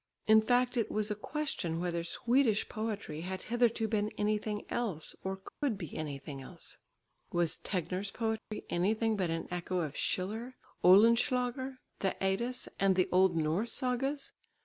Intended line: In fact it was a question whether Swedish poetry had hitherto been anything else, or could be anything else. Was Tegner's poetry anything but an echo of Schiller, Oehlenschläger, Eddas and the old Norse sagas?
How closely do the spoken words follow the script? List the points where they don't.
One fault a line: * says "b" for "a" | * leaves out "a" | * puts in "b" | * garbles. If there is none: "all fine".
* puts in "the"